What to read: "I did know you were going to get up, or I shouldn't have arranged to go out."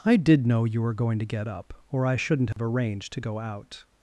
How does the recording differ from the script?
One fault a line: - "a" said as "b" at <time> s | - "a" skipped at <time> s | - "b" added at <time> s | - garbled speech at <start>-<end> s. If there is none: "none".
none